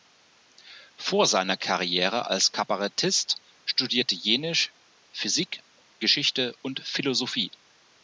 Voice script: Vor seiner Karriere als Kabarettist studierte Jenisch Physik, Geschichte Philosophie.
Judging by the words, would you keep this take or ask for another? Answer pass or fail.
fail